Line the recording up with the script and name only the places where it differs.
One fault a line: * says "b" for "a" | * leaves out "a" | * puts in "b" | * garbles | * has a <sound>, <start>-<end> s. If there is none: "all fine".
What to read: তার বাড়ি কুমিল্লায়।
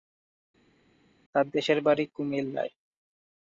* puts in "দেশের"